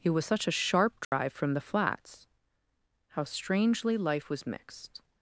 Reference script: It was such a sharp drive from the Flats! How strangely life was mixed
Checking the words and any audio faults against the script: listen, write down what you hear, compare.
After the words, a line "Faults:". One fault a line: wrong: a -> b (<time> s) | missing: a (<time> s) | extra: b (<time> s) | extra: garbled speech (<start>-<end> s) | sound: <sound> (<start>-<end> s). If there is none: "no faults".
It was such a sharp drive from the Flats! How strangely life was mixed
Faults:
sound: dropout (1.0-1.1 s)